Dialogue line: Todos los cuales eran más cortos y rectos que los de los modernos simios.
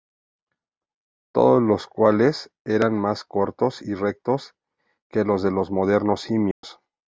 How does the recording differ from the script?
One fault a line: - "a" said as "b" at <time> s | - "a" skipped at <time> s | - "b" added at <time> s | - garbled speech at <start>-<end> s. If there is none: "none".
none